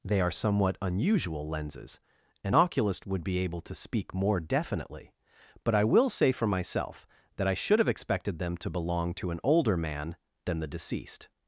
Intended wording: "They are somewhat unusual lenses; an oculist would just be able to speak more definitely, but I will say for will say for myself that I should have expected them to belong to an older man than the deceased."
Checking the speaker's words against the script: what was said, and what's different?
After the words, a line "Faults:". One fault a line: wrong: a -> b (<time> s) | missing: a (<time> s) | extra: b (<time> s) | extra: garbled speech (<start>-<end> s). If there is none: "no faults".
"They are somewhat unusual lenses; an oculist would be able to speak more definitely, but I will say for myself that I should have expected them to belong to an older man than the deceased."
Faults:
missing: just (3.2 s)
missing: will say for (6.5 s)